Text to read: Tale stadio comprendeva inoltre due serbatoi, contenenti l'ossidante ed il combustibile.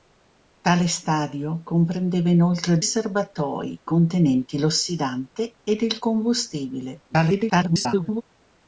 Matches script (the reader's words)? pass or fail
fail